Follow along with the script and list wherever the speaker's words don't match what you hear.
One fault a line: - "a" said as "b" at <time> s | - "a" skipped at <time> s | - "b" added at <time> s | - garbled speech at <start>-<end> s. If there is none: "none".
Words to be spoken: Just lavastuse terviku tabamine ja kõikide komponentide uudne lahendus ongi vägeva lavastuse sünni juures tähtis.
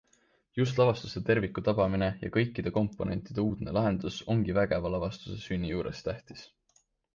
none